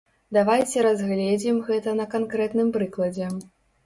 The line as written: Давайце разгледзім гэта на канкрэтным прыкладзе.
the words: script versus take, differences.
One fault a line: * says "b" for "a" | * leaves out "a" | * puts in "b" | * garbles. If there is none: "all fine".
all fine